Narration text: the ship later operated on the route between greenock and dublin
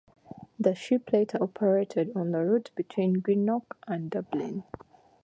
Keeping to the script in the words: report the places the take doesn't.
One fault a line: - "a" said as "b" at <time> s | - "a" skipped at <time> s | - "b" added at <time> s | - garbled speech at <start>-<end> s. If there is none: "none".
none